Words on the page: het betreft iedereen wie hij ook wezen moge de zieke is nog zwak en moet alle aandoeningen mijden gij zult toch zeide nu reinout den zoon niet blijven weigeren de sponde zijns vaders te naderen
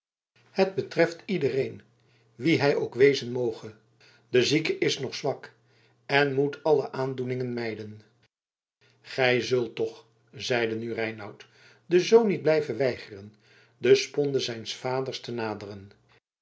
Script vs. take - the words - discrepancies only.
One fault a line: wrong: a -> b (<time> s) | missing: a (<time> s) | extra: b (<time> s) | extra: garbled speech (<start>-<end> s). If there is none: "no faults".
no faults